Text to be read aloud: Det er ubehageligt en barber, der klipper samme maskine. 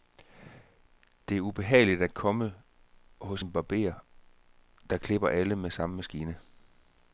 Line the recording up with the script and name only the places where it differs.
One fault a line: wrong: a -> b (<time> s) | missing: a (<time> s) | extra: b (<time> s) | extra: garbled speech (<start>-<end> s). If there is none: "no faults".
extra: at komme hos (2.0 s)
extra: alle med (5.3 s)